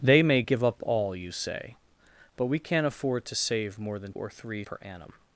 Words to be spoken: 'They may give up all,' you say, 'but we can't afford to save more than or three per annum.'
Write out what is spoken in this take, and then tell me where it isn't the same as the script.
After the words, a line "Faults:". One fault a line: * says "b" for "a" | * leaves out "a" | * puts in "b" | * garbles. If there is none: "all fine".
'They may give up all,' you say, 'but we can't afford to save more than or three per annum.'
Faults:
all fine